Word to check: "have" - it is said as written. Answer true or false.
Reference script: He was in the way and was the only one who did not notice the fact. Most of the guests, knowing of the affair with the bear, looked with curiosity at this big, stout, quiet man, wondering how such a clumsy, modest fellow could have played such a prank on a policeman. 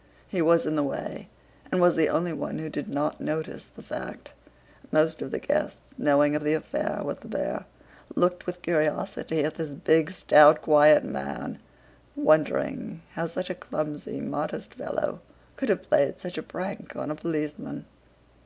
true